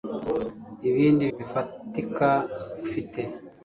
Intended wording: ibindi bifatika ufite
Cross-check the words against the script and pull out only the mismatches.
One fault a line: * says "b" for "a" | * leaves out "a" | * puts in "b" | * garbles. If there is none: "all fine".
all fine